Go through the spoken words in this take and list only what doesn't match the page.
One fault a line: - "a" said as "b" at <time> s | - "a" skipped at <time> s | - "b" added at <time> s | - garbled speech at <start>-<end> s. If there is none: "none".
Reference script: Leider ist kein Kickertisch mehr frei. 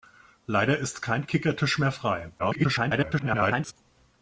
- garbled speech at 2.4-3.7 s